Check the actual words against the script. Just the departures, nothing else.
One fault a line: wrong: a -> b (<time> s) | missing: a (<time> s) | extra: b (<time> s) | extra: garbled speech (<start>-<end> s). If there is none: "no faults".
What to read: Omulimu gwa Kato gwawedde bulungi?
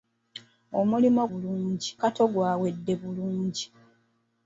wrong: gwa -> bulungi (1.3 s)